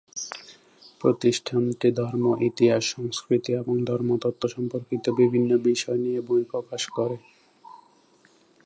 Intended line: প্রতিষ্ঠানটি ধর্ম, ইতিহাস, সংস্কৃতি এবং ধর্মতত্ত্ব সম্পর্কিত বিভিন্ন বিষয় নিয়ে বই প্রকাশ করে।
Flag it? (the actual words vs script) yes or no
no